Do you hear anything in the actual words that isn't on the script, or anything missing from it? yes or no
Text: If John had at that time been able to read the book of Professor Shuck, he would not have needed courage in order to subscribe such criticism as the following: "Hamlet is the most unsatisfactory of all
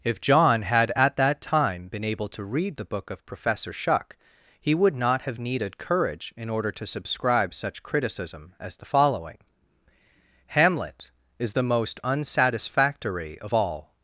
no